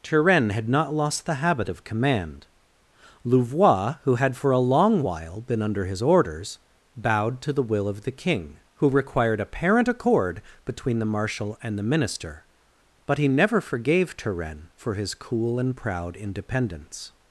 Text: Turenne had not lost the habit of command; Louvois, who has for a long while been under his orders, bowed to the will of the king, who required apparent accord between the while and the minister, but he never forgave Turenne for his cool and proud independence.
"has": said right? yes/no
no